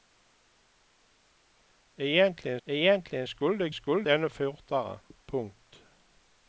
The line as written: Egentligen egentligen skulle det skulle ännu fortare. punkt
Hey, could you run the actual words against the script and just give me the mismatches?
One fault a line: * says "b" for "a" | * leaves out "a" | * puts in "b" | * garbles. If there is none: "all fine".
all fine